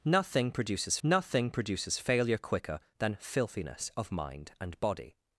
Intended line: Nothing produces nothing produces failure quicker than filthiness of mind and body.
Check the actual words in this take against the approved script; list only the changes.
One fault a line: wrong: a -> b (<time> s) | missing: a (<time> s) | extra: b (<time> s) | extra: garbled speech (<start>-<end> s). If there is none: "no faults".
no faults